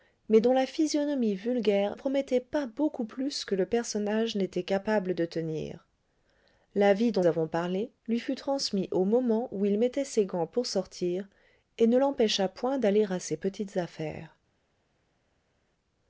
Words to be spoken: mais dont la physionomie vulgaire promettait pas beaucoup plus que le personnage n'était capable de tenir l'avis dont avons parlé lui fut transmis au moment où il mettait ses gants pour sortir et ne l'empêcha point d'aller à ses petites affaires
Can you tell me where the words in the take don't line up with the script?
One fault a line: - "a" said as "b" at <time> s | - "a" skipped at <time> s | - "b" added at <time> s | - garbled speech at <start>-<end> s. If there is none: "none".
none